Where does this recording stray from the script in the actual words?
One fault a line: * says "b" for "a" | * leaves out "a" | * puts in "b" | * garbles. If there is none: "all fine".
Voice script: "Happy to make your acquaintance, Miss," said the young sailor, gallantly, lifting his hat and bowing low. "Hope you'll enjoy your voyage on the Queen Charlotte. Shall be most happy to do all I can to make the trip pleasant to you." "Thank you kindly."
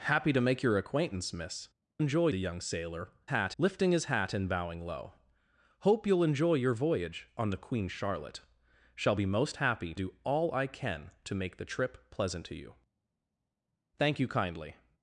* says "enjoy" for "said"
* says "hat" for "gallantly"
* leaves out "to"